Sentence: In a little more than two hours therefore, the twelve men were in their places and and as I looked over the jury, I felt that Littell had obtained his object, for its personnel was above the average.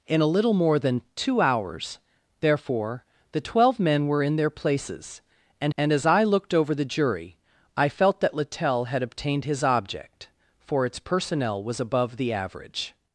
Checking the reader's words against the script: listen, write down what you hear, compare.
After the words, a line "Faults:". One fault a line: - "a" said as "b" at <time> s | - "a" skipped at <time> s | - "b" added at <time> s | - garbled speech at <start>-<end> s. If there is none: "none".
In a little more than two hours therefore, the twelve men were in their places and and as I looked over the jury, I felt that Littell had obtained his object, for its personnel was above the average.
Faults:
none